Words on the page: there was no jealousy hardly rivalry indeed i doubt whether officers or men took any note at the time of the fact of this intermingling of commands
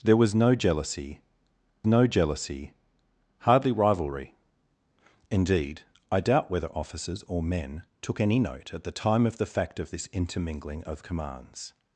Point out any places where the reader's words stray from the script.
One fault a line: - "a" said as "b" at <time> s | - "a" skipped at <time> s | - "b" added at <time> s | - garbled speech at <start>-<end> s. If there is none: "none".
- "no jealousy" added at 1.8 s